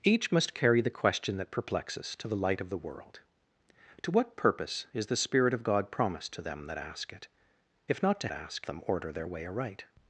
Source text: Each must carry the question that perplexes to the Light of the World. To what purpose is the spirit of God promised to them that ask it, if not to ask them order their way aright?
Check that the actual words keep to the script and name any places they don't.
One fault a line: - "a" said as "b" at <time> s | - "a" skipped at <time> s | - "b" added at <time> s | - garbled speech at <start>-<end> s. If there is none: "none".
none